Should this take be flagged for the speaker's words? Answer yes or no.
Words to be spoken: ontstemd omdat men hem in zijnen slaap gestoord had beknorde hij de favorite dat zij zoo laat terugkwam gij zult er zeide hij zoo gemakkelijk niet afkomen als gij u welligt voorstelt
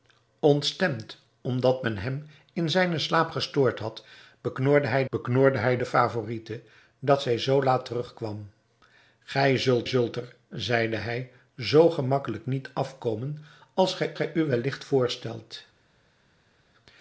yes